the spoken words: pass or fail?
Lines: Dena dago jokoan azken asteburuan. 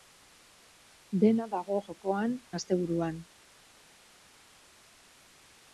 fail